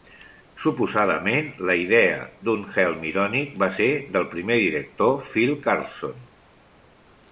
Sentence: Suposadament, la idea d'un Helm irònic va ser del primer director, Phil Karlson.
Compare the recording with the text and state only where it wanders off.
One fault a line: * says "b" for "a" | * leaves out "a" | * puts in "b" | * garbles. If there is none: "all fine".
all fine